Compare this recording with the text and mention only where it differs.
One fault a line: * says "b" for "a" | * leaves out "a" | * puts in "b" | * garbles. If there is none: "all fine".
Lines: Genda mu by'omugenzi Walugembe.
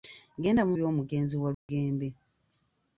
all fine